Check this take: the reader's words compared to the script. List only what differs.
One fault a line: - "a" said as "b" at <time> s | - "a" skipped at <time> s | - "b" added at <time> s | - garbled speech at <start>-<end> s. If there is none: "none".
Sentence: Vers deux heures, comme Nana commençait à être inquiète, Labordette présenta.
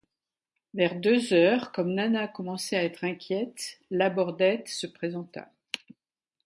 - "se" added at 4.7 s